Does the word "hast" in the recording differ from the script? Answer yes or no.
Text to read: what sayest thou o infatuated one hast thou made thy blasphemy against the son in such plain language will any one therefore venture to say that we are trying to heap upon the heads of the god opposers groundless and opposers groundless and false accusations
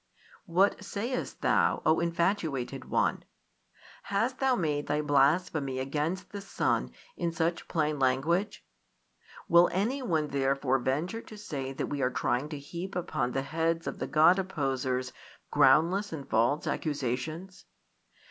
no